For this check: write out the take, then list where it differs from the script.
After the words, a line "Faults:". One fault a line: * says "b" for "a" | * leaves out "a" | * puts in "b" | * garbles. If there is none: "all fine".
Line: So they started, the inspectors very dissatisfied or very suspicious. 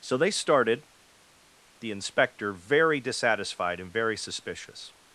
So they started, the inspector very dissatisfied and very suspicious.
Faults:
* says "inspector" for "inspectors"
* says "and" for "or"